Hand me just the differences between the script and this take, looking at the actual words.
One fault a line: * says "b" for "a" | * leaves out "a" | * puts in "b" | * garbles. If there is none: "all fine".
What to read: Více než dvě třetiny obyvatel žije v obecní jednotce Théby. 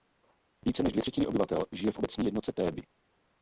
all fine